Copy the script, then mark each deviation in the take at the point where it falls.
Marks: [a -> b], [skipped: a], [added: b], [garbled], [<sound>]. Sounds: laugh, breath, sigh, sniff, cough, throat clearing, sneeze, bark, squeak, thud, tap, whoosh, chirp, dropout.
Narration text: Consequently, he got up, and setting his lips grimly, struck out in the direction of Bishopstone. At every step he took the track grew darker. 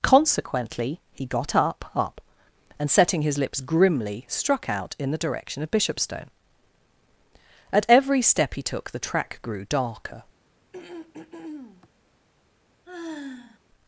Consequently, he got up, [added: up] and setting his lips grimly, struck out in the direction of Bishopstone. At every step he took the track grew darker. [throat clearing] [sigh]